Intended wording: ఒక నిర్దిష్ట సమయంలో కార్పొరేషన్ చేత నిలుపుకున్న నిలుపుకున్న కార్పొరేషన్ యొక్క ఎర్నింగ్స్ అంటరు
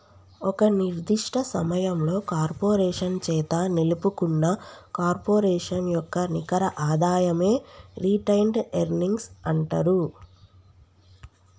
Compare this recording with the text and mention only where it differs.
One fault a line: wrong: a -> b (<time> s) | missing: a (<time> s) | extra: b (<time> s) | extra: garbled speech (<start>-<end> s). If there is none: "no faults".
missing: నిలుపుకున్న (4.5 s)
extra: నికర ఆదాయమే రిటైన్డ్ (6.3 s)